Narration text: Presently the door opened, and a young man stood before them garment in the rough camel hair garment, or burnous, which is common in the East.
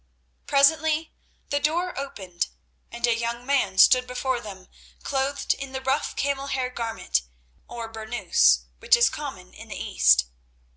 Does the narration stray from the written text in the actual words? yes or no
yes